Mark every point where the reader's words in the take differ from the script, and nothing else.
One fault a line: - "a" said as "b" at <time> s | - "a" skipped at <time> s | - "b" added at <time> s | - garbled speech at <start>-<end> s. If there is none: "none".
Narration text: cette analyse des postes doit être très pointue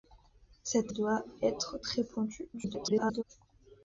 - "analyse des postes" skipped at 0.9 s
- garbled speech at 2.5-3.2 s